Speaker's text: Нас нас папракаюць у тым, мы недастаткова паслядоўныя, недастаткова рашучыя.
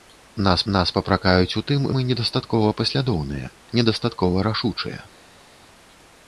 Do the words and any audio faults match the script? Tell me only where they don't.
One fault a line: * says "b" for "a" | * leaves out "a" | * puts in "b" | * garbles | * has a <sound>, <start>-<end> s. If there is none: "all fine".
all fine